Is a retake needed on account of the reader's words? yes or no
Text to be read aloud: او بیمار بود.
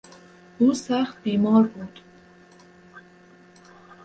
yes